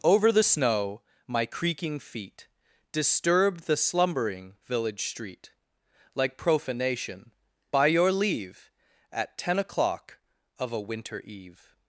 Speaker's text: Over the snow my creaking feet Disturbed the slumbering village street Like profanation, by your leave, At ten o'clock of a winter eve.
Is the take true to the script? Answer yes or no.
yes